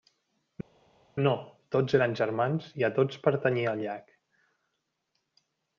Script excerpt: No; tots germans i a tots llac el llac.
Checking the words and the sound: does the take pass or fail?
fail